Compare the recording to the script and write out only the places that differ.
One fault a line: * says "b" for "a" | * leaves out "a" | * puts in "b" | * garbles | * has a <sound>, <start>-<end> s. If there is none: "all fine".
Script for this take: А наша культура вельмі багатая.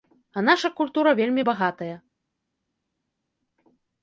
all fine